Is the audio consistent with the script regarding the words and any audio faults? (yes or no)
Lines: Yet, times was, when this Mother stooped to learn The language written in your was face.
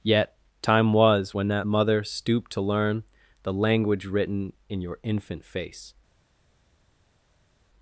no